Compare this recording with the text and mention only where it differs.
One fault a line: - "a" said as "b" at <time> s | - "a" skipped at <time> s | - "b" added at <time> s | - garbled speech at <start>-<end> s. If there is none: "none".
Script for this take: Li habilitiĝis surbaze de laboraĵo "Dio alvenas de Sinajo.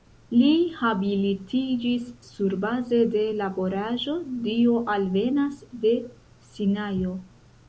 none